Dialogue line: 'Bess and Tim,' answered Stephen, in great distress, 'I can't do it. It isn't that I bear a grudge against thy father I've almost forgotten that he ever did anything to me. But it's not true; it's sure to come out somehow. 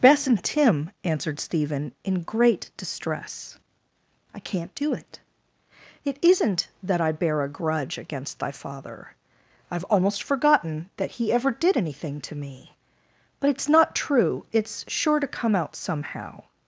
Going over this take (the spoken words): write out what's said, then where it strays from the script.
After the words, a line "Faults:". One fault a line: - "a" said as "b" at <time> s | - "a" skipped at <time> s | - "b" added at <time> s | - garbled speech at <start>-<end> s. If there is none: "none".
'Bess and Tim,' answered Stephen, in great distress, 'I can't do it. It isn't that I bear a grudge against thy father I've almost forgotten that he ever did anything to me. But it's not true; it's sure to come out somehow.
Faults:
none